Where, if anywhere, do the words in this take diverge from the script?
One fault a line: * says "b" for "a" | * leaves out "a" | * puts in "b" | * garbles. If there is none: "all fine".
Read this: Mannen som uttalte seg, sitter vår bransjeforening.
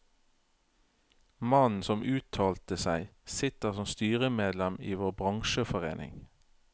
* puts in "som styremedlem i"